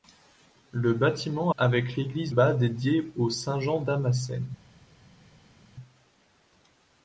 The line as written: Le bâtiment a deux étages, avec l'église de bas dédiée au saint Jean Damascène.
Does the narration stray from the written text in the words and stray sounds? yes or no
yes